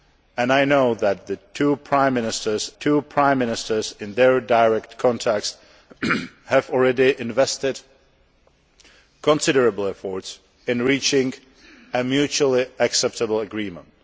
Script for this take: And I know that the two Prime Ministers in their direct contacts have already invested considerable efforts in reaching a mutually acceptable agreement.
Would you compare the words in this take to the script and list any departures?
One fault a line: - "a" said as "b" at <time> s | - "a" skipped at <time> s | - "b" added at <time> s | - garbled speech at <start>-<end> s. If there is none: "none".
- "two Prime Ministers" added at 2.8 s